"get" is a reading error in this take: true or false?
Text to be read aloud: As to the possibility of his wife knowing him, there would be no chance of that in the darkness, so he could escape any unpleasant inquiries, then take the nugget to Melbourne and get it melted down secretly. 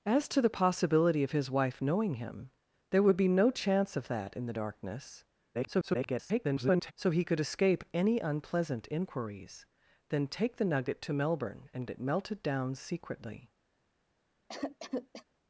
true